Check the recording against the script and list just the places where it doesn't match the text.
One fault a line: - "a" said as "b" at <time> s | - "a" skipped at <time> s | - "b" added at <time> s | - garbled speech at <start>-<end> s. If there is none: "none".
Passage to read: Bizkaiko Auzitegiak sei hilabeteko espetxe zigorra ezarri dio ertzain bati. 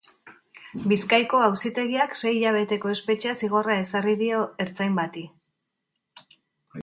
none